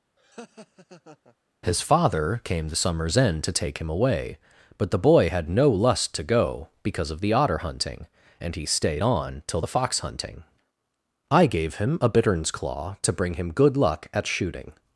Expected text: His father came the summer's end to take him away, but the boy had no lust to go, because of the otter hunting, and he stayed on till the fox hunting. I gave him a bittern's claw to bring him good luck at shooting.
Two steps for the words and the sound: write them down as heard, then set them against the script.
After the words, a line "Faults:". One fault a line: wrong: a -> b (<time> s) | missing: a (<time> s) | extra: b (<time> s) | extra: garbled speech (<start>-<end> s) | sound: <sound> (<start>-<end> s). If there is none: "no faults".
His father came the summer's end to take him away, but the boy had no lust to go, because of the otter hunting, and he stayed on till the fox hunting. I gave him a bittern's claw to bring him good luck at shooting.
Faults:
sound: laugh (0.2-1.4 s)